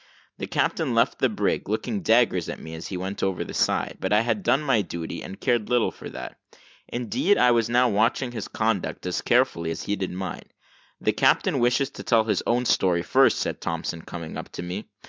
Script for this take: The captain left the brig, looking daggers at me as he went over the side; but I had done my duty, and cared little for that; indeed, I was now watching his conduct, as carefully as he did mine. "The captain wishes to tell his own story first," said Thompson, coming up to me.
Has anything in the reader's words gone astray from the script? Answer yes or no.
no